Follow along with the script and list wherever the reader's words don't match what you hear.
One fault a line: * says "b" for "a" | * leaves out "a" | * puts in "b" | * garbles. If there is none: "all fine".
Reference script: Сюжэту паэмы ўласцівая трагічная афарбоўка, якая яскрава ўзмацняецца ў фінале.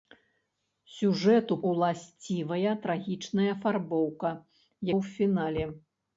* leaves out "паэмы"
* leaves out "якая яскрава ўзмацняецца"